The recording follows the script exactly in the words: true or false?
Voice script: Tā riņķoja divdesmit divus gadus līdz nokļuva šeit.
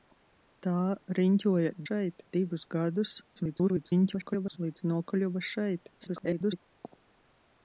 false